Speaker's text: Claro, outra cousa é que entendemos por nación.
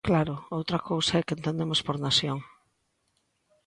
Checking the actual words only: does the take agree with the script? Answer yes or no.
yes